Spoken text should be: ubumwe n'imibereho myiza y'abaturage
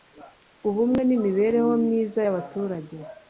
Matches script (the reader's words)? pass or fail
pass